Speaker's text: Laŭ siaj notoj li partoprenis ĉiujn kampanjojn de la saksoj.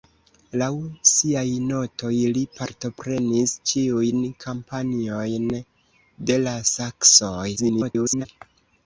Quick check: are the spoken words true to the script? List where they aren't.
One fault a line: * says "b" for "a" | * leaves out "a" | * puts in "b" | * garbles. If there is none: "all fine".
* garbles